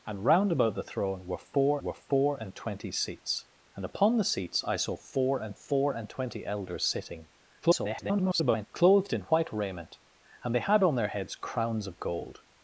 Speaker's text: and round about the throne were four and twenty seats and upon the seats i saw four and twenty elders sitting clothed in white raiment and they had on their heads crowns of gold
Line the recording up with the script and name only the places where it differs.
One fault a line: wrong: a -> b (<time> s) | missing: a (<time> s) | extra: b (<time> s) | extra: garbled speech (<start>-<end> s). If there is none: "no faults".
extra: were four (1.8 s)
extra: four and (5.5 s)
extra: garbled speech (7.6-8.7 s)